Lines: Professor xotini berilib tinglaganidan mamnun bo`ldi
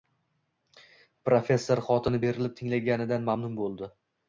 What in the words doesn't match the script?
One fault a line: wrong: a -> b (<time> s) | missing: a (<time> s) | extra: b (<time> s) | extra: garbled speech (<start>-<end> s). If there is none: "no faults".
no faults